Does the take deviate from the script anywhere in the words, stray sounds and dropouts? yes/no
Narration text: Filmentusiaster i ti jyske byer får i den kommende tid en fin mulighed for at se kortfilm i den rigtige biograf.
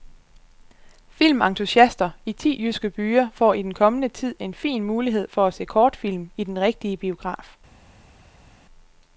no